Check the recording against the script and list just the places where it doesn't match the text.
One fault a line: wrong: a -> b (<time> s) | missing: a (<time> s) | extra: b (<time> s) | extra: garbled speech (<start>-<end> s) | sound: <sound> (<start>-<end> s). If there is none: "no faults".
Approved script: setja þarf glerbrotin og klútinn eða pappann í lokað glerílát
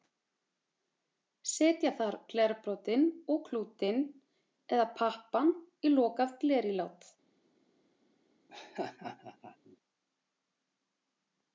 sound: laugh (8.5-9.8 s)